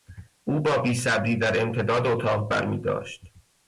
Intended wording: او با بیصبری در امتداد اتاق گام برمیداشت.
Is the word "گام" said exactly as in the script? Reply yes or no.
no